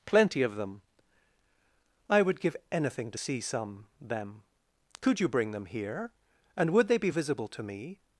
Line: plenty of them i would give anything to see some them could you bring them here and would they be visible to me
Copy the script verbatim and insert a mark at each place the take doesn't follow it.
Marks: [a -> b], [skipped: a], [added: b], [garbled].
plenty of them i would give anything to see some them could you bring them here and would they be visible to me